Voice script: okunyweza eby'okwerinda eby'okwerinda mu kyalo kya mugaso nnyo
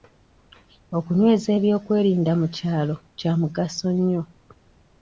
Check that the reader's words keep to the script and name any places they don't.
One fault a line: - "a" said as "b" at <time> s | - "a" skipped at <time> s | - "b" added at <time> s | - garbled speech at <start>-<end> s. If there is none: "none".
- "eby'okwerinda" skipped at 2.3 s